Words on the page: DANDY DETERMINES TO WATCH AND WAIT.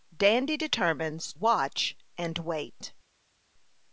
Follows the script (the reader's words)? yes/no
no